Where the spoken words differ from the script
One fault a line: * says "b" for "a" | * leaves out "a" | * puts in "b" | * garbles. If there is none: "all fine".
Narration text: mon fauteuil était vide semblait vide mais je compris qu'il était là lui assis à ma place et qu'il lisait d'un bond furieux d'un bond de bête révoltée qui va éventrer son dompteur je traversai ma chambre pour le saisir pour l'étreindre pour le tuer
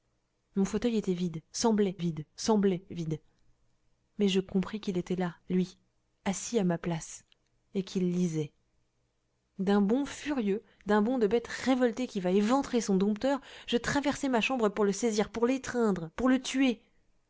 * puts in "semblait vide"